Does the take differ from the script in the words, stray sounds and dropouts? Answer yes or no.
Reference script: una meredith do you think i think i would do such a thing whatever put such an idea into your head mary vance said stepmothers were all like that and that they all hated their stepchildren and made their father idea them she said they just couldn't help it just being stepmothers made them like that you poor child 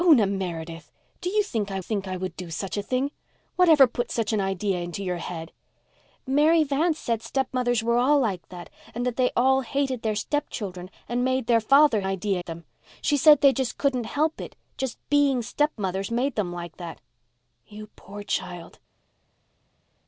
no